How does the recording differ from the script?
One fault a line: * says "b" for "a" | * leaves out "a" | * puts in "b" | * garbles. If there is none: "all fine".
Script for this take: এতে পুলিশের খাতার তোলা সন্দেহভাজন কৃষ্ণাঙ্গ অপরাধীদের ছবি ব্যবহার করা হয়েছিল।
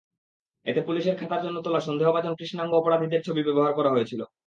* puts in "জন্য"